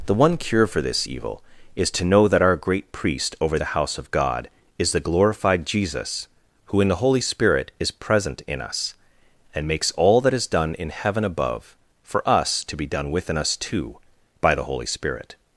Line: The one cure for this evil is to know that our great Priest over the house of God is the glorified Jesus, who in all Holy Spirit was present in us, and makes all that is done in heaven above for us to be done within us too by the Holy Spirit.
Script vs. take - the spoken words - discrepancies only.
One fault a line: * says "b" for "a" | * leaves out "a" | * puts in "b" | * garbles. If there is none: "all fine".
* says "the" for "all"
* says "is" for "was"